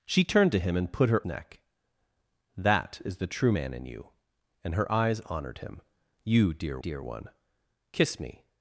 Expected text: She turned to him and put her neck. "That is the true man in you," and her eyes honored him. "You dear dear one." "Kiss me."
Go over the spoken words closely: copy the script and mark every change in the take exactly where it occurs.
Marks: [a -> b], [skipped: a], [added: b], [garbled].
She turned to him and put her neck. "That is the true man in you," and her eyes honored him. "You dear dear one." "Kiss me."